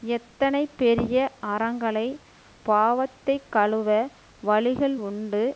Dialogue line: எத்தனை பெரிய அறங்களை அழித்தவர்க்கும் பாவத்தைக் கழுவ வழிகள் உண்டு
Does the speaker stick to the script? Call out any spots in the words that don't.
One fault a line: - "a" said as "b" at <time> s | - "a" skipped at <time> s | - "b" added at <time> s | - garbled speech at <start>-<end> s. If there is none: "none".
- "அழித்தவர்க்கும்" skipped at 2.1 s